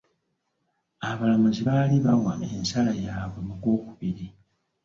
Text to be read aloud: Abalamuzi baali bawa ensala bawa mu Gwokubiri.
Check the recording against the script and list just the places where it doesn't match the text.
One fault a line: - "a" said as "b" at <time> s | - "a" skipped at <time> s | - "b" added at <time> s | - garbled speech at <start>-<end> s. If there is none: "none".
- "bawa" said as "yaabwe" at 3.0 s